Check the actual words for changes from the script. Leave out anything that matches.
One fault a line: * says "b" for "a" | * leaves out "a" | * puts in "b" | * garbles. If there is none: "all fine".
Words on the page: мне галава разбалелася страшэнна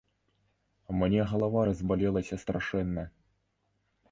all fine